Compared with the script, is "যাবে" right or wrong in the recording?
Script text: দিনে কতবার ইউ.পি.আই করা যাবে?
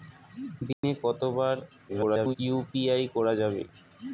right